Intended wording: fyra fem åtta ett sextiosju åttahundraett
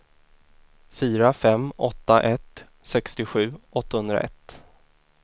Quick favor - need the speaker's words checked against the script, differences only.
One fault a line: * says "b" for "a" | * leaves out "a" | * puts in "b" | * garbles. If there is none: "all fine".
all fine